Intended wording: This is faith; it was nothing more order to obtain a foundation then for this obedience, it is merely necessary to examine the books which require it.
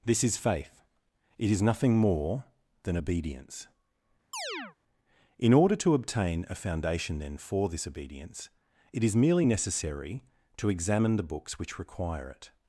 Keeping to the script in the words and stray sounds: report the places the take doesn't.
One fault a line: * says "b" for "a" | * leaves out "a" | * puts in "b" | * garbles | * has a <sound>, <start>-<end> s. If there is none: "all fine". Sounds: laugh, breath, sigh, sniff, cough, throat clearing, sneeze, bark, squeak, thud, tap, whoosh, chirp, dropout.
* says "is" for "was"
* puts in "than obedience In"
* has a chirp, 4.3-4.8 s